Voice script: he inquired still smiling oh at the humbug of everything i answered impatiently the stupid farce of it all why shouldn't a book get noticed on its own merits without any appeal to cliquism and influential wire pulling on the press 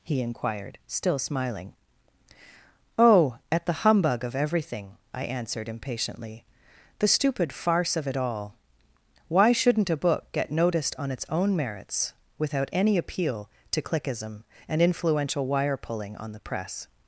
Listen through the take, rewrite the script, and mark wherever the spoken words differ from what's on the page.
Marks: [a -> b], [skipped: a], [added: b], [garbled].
he inquired still smiling oh at the humbug of everything i answered impatiently the stupid farce of it all why shouldn't a book get noticed on its own merits without any appeal to cliquism and influential wire pulling on the press